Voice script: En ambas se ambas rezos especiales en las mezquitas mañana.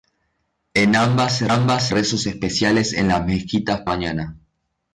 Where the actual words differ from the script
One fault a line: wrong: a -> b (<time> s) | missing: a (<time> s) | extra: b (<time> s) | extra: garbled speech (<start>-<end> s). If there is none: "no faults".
no faults